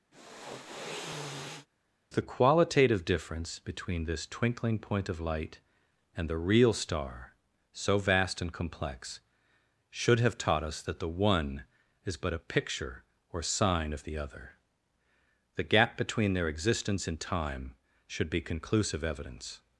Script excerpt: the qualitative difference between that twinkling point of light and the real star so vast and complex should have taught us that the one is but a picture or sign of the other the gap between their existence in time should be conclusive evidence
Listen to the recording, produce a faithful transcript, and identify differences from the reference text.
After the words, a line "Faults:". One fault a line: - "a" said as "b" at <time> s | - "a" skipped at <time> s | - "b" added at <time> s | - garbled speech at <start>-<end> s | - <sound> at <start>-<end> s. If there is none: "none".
the qualitative difference between this twinkling point of light and the real star so vast and complex should have taught us that the one is but a picture or sign of the other the gap between their existence in time should be conclusive evidence
Faults:
- sniff at 0.1-1.7 s
- "that" said as "this" at 4.0 s